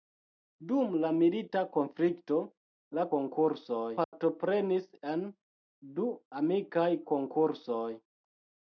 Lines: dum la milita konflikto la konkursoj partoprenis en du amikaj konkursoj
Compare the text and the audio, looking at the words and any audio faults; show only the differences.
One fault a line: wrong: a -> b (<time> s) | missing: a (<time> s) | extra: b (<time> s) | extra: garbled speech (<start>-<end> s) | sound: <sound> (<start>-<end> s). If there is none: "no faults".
sound: dropout (4.0-4.1 s)